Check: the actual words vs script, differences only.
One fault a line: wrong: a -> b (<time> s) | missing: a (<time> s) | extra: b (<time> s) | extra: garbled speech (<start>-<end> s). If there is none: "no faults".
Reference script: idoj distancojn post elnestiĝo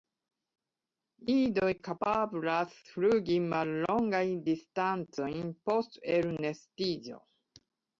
extra: kapablas flugi mallongajn (1.9 s)